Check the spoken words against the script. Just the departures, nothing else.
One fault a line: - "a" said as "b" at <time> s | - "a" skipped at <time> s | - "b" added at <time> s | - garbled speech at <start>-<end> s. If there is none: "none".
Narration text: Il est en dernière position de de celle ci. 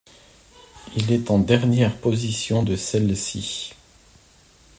- "de" skipped at 2.8 s